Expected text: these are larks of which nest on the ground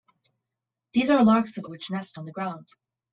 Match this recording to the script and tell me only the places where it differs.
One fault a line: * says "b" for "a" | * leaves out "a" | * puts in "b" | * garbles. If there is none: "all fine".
all fine